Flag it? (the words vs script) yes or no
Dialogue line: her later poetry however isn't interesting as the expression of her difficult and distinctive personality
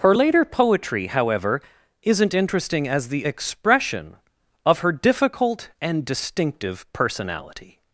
no